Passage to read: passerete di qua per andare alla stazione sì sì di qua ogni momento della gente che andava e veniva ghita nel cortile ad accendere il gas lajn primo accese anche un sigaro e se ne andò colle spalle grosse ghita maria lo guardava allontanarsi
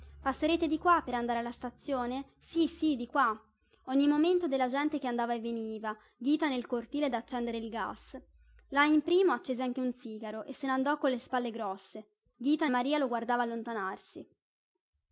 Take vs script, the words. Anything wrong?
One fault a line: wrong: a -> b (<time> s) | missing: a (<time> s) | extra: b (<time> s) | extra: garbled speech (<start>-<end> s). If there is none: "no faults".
no faults